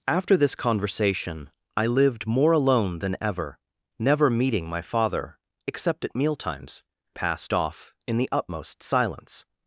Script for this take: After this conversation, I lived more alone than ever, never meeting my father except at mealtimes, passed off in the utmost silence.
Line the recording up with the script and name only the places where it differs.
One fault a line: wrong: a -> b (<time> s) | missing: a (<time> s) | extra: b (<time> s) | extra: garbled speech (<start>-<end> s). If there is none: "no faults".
no faults